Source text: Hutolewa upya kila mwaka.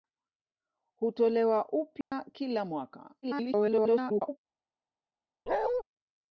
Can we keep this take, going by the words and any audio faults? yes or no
no